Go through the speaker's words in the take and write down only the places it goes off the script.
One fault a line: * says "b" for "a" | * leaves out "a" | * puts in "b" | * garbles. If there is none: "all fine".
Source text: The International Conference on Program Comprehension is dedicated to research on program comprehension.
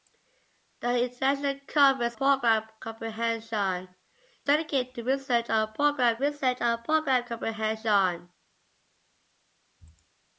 * leaves out "on"
* leaves out "is"
* puts in "research on program"